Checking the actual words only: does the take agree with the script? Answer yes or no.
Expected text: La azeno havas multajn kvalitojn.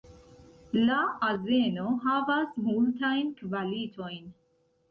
yes